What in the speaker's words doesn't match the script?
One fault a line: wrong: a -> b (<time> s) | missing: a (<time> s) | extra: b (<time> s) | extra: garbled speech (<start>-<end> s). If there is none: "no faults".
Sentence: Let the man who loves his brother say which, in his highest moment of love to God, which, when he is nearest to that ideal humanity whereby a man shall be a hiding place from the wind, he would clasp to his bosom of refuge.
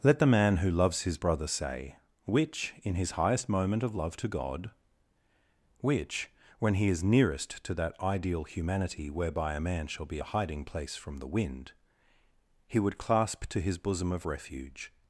no faults